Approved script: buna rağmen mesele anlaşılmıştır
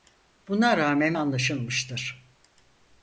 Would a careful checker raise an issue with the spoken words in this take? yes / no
yes